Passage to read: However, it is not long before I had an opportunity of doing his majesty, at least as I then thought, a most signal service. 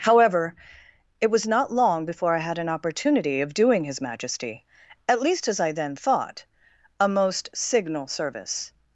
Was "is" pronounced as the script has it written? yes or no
no